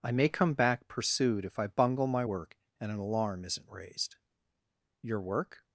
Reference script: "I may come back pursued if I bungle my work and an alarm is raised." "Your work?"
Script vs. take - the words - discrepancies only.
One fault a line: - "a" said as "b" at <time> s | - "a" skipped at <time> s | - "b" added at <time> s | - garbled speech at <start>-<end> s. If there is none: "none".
- "is" said as "isn't" at 3.4 s